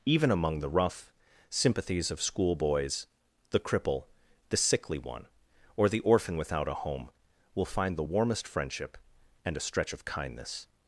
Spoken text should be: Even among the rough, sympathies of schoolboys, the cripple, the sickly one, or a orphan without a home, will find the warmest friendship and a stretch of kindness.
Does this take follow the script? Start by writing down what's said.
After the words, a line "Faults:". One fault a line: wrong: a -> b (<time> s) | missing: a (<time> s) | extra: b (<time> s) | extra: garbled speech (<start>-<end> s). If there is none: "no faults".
Even among the rough, sympathies of schoolboys, the cripple, the sickly one, or the orphan without a home, will find the warmest friendship and a stretch of kindness.
Faults:
wrong: a -> the (5.9 s)